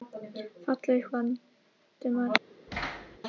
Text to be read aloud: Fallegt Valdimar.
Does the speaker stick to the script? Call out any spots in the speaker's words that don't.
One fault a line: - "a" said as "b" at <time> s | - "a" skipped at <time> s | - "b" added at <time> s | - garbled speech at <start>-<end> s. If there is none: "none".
none